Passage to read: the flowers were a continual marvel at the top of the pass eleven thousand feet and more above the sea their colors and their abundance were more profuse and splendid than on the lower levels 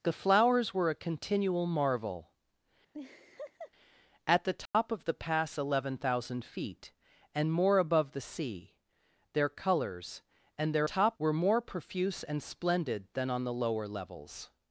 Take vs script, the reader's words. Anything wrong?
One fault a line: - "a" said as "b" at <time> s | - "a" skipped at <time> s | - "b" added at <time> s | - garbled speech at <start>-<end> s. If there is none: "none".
- "abundance" said as "top" at 10.8 s